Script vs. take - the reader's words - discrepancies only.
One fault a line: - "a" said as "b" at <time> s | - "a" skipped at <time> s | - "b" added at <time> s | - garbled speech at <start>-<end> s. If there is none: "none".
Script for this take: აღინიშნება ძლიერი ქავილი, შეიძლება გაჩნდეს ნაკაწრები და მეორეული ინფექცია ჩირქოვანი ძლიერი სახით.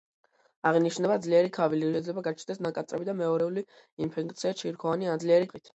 none